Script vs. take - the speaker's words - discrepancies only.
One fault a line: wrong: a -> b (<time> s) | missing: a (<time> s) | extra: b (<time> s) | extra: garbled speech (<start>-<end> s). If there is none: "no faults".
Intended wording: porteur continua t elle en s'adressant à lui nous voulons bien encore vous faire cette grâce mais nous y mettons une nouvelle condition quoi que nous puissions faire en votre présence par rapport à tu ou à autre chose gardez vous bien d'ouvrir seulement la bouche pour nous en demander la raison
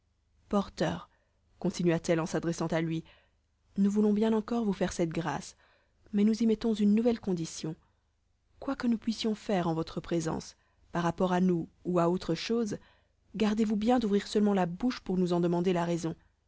wrong: tu -> nous (11.4 s)